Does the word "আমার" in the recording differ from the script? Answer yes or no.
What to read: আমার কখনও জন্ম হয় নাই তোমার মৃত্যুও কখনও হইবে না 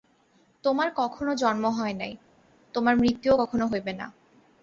yes